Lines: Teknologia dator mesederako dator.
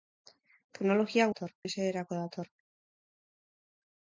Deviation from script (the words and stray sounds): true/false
false